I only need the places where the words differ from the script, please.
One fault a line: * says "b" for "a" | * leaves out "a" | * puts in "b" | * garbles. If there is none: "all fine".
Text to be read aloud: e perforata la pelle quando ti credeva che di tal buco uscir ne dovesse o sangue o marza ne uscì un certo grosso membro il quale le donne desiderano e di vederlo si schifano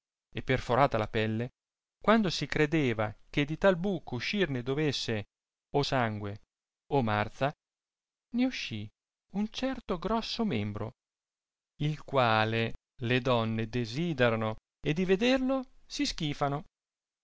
* says "si" for "ti"